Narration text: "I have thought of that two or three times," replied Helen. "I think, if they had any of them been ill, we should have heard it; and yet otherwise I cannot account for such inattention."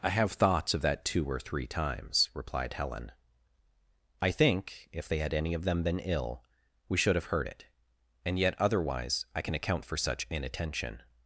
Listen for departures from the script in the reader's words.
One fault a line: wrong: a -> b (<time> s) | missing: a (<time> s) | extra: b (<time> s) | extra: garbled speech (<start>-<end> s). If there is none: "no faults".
wrong: thought -> thoughts (0.3 s)
wrong: cannot -> can (9.4 s)